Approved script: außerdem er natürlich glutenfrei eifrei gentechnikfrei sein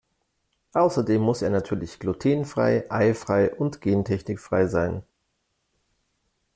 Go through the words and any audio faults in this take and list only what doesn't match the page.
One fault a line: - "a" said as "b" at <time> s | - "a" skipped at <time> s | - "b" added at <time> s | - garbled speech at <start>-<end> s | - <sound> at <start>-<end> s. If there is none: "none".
- "muss" added at 1.2 s
- "und" added at 3.5 s